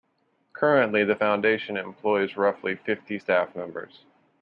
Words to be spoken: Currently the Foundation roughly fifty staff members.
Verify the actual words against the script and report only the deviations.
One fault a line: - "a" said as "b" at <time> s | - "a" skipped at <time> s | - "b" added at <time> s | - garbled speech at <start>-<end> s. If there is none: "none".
- "employs" added at 1.8 s